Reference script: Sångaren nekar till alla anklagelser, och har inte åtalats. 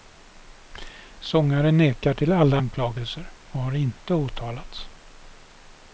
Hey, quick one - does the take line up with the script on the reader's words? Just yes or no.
yes